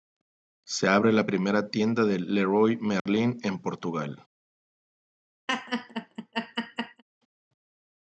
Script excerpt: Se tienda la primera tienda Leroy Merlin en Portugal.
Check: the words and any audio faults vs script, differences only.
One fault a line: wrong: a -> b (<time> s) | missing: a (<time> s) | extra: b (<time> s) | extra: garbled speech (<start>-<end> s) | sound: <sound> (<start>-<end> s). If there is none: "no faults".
wrong: tienda -> abre (0.9 s)
extra: de (2.0 s)
sound: dropout (3.0-3.1 s)
sound: laugh (5.5-7.0 s)